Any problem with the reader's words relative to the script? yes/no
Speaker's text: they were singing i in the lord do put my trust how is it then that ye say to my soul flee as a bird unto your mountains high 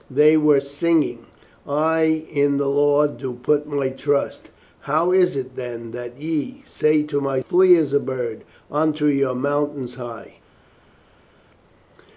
yes